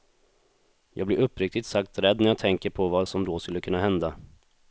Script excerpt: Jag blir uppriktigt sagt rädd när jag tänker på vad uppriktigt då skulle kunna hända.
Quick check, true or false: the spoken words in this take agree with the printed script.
false